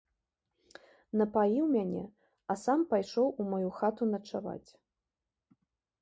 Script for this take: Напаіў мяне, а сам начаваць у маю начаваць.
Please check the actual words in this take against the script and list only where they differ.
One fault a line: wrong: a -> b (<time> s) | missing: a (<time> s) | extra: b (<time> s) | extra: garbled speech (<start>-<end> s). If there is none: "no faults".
wrong: начаваць -> пайшоў (2.9 s)
extra: хату (3.8 s)